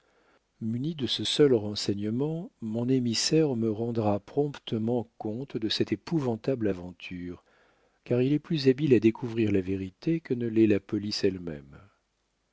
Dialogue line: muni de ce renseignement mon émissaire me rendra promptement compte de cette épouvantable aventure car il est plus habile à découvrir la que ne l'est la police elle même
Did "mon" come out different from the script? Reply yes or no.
no